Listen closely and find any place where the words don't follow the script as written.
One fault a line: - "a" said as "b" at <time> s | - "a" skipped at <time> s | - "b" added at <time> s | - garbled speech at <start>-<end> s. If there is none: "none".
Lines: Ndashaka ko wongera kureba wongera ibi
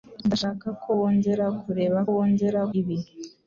none